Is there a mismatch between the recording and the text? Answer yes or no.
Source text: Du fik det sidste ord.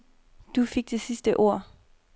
no